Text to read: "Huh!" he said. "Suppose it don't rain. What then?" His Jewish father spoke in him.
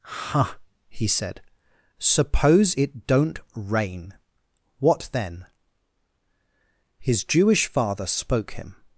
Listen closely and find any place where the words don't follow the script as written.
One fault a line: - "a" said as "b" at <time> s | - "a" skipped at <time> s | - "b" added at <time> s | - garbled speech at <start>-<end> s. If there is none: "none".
- "in" skipped at 8.5 s